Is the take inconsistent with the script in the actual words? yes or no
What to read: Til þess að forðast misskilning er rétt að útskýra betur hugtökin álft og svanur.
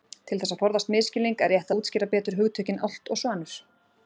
no